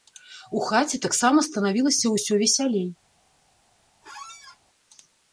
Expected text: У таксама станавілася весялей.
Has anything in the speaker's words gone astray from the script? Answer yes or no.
yes